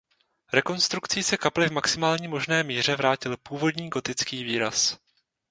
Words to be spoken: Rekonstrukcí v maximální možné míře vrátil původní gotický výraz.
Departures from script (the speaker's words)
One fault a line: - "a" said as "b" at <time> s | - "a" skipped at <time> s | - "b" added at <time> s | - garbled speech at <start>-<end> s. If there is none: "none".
- "se kapli" added at 1.2 s